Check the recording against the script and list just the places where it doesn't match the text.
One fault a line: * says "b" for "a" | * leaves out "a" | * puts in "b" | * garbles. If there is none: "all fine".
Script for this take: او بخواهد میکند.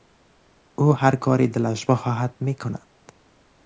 * puts in "هر کاری دلش"